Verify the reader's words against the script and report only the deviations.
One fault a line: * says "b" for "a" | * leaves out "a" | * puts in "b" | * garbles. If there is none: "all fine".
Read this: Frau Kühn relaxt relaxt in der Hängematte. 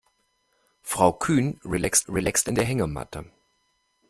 all fine